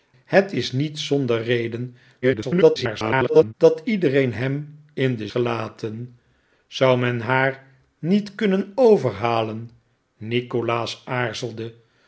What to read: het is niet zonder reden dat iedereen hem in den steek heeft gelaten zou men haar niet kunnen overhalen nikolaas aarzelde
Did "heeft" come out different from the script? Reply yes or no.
yes